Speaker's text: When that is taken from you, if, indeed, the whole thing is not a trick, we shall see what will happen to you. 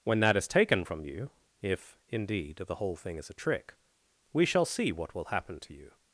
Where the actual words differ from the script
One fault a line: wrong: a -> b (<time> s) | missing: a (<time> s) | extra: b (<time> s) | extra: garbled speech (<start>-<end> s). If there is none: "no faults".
missing: not (3.3 s)